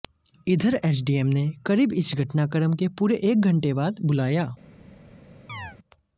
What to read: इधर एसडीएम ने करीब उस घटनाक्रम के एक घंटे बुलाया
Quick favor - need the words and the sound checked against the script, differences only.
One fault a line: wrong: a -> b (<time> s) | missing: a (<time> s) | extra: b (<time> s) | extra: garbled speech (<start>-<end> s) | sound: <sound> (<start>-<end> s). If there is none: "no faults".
wrong: उस -> इस (1.9 s)
extra: पूरे (3.0 s)
extra: बाद (3.7 s)
sound: chirp (5.5-5.8 s)